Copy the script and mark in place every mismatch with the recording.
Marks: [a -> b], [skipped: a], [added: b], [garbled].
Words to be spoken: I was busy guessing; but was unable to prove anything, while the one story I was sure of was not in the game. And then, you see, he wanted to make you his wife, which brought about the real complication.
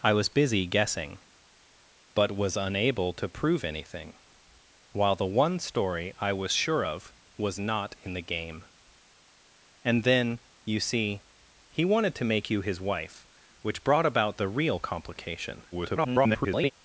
I was busy guessing; but was unable to prove anything, while the one story I was sure of was not in the game. And then, you see, he wanted to make you his wife, which brought about the real complication. [garbled]